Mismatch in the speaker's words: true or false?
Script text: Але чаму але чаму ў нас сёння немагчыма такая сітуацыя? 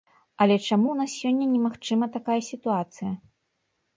true